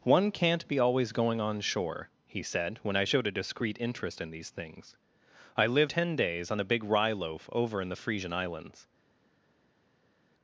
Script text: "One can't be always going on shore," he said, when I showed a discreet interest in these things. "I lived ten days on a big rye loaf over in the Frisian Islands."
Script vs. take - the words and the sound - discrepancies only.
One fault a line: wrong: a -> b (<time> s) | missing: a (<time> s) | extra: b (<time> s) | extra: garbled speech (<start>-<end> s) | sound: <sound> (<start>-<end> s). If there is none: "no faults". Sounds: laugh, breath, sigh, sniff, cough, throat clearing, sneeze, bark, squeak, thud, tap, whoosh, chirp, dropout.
no faults